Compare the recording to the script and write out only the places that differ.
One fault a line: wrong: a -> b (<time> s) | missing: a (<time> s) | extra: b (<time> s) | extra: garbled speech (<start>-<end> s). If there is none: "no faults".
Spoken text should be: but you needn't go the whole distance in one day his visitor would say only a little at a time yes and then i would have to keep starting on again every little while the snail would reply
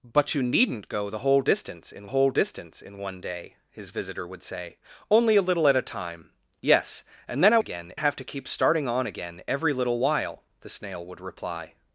extra: whole distance in (2.1 s)
wrong: would -> again (7.6 s)